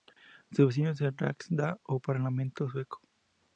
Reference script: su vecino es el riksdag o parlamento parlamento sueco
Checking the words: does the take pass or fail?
fail